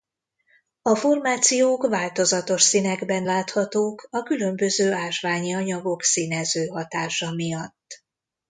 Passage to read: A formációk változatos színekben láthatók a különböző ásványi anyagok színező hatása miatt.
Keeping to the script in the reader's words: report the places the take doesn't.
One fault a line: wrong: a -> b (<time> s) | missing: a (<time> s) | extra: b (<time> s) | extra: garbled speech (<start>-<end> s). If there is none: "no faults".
no faults